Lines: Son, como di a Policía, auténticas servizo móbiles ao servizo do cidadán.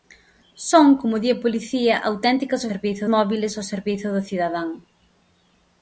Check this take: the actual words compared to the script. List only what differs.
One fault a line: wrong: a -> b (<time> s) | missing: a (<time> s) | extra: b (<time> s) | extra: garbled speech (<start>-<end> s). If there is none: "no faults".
no faults